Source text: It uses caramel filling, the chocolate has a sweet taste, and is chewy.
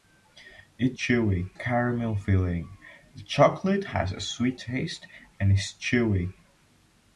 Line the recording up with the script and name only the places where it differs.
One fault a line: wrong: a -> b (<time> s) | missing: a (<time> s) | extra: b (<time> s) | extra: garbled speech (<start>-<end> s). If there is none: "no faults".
wrong: uses -> chewy (0.9 s)